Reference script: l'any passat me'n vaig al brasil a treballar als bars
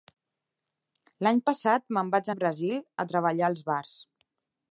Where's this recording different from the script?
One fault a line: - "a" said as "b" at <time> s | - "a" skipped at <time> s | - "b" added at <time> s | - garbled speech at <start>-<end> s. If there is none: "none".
none